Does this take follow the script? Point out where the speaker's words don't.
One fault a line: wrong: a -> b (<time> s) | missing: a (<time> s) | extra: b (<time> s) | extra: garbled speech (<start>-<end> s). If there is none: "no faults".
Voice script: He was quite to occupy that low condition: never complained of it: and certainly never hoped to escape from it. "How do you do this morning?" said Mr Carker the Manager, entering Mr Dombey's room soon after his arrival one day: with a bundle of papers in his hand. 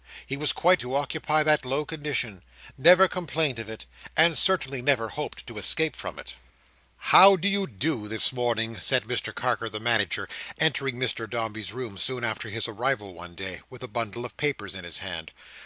no faults